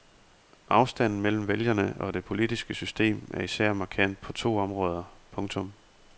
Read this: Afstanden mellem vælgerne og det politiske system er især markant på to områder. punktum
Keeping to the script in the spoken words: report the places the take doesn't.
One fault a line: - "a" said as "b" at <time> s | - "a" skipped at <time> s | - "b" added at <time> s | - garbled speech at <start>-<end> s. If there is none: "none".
none